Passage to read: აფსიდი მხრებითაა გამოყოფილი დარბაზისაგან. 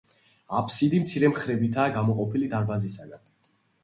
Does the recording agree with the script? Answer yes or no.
no